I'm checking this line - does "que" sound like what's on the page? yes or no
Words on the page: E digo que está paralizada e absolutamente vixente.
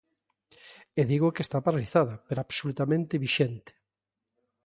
yes